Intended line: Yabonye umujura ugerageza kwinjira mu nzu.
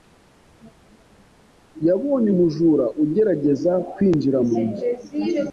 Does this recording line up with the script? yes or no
yes